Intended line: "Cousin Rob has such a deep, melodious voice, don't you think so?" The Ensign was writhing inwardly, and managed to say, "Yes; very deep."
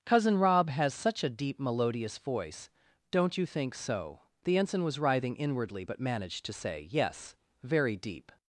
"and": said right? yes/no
no